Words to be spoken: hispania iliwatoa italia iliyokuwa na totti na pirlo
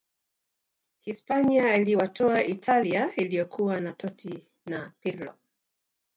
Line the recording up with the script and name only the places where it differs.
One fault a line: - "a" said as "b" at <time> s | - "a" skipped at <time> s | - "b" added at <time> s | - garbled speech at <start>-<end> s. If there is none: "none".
none